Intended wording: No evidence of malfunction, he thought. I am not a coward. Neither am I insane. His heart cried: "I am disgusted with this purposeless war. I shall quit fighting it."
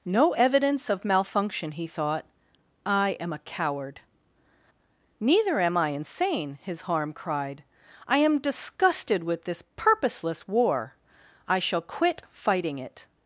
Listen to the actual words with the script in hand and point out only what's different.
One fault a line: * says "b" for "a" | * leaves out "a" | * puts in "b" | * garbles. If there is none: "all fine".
* leaves out "not"
* says "harm" for "heart"